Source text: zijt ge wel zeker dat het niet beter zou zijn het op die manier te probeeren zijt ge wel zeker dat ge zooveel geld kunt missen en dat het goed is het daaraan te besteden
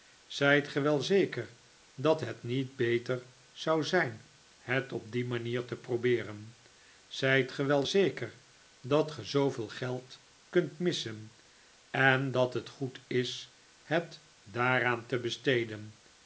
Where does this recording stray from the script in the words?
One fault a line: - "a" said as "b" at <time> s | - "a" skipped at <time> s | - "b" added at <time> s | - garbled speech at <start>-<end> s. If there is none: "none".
none